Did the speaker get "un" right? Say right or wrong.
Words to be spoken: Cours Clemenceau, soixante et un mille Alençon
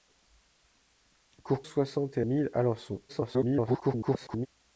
wrong